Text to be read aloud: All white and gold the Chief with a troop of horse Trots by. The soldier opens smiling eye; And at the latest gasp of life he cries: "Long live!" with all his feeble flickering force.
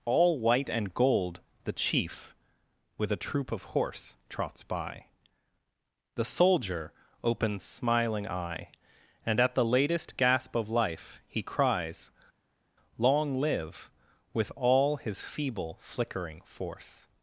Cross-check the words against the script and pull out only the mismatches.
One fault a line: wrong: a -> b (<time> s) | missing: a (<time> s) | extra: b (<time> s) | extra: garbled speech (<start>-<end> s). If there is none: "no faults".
no faults